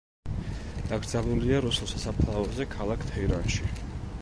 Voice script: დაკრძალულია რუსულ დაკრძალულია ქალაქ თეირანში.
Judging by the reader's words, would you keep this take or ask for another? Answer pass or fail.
fail